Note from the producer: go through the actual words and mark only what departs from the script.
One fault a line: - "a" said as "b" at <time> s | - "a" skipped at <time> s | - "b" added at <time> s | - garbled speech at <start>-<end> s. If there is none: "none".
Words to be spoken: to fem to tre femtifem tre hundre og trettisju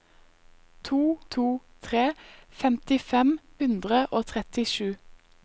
- "fem" skipped at 1.2 s
- "tre" skipped at 3.4 s